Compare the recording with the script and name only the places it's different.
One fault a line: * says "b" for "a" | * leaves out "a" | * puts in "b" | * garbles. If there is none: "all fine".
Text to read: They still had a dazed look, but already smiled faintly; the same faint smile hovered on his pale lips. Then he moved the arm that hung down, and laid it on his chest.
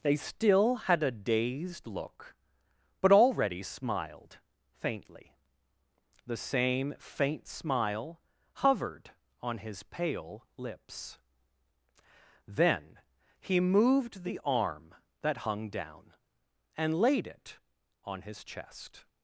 all fine